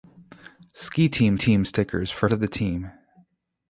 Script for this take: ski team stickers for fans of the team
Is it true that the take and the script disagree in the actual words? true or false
true